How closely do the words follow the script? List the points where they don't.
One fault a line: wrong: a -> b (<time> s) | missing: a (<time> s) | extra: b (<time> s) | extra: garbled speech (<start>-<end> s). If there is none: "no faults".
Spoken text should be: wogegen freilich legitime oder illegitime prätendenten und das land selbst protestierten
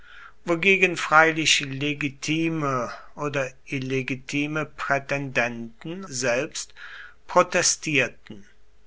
missing: und das land (6.0 s)